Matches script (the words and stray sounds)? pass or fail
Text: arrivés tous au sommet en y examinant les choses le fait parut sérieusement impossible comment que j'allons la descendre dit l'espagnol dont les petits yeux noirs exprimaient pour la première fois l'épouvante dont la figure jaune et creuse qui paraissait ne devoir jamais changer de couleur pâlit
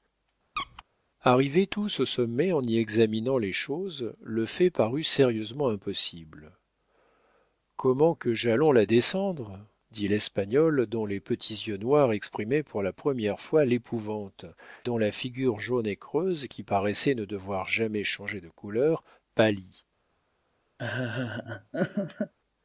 fail